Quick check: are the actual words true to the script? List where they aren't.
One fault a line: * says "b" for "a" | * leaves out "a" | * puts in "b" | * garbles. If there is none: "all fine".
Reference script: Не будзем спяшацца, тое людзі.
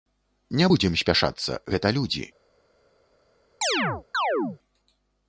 * says "гэта" for "тое"